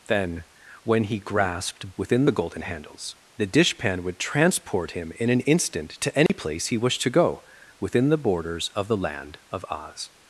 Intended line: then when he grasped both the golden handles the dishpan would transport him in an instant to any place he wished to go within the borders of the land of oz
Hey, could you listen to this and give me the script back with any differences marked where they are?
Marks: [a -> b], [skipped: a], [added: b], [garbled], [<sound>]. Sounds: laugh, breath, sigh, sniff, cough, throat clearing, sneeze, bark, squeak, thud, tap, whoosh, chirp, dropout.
then when he grasped [both -> within] the golden handles the dishpan would transport him in an instant to any [dropout] place he wished to go within the borders of the land of oz